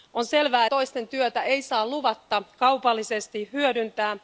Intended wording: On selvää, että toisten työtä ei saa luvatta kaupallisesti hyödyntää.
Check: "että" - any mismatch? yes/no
yes